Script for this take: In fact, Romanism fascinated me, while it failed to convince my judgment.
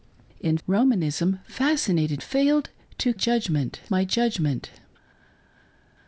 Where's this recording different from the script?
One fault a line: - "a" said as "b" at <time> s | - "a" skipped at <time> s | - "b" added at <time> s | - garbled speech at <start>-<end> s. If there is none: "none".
- "fact" skipped at 0.6 s
- "me while it" skipped at 2.2 s
- "convince" said as "judgment" at 3.1 s